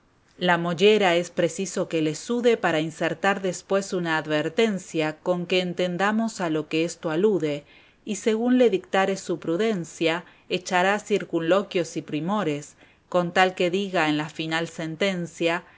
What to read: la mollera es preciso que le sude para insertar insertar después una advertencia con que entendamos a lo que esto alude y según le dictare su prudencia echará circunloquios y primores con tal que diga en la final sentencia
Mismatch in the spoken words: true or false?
true